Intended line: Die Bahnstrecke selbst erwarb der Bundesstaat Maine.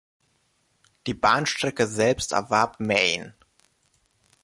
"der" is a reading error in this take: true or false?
true